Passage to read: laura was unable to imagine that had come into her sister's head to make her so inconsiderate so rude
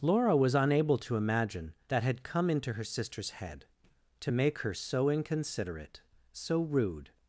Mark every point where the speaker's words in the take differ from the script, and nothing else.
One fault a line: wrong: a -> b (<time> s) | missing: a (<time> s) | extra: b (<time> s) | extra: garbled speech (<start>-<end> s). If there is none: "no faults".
no faults